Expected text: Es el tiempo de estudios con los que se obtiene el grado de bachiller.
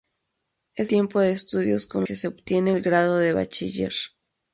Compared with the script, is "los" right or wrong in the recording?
wrong